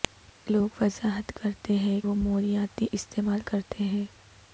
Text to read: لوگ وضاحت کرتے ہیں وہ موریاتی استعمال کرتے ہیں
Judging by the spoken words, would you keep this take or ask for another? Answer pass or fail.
pass